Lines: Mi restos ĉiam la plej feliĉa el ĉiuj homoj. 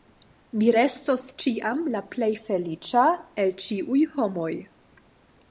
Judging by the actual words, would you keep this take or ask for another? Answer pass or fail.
pass